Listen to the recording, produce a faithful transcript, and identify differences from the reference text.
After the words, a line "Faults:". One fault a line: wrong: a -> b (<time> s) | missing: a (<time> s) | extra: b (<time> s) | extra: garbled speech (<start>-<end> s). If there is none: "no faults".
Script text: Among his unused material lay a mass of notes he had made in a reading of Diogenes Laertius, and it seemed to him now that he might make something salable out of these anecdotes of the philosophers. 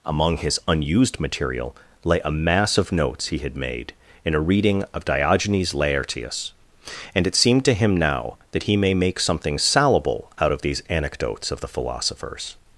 Among his unused material lay a mass of notes he had made in a reading of Diogenes Laertius, and it seemed to him now that he may make something salable out of these anecdotes of the philosophers.
Faults:
wrong: might -> may (8.8 s)